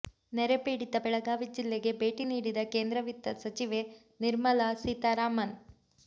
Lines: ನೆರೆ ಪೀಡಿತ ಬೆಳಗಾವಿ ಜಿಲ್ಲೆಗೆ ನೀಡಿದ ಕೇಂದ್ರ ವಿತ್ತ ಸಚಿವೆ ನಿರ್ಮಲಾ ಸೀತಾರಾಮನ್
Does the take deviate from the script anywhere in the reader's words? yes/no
yes